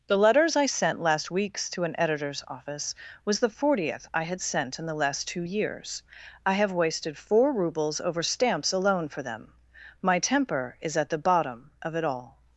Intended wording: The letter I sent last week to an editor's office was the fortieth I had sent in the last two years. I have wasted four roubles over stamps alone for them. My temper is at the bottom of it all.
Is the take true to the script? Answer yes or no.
no